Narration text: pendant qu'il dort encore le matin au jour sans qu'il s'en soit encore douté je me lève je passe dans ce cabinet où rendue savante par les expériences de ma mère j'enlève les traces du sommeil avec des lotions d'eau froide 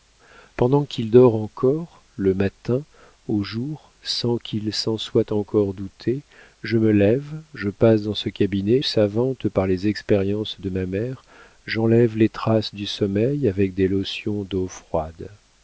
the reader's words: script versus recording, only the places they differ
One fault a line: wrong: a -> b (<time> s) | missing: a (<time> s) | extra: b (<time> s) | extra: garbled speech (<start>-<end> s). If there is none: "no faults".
missing: où rendue (8.8 s)